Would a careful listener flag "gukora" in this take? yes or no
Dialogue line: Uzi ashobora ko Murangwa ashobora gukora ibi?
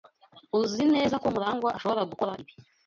no